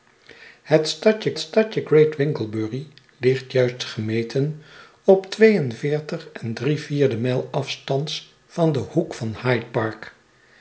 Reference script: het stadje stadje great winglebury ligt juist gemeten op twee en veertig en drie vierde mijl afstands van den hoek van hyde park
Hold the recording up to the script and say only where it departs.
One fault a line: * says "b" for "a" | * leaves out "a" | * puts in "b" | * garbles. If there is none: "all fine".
all fine